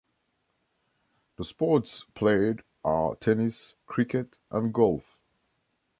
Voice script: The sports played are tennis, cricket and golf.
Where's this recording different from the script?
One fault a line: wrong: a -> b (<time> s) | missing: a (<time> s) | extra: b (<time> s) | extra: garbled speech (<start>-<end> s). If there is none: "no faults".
no faults